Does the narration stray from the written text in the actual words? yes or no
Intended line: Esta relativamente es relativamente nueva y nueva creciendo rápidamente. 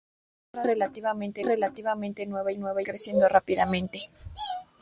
no